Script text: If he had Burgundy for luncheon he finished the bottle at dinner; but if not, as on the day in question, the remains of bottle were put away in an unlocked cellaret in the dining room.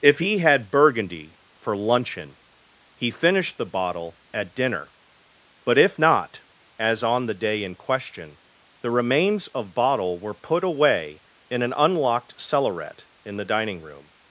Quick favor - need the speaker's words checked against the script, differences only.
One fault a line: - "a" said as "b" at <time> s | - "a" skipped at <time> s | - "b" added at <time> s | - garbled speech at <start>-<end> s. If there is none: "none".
none